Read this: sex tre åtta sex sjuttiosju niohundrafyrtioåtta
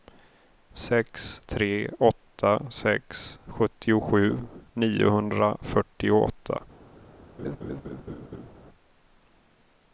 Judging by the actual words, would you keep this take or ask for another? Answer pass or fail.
pass